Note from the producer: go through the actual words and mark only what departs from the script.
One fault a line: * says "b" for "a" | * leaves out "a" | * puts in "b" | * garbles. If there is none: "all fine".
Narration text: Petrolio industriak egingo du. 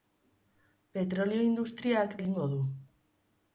all fine